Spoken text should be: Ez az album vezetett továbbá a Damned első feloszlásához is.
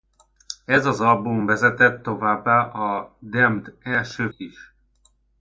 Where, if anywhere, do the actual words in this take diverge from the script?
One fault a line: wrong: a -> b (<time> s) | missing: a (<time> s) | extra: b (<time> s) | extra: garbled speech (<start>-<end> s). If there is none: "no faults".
missing: feloszlásához (4.3 s)